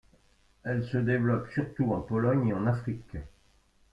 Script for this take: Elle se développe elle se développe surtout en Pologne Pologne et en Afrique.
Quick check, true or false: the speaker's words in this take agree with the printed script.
false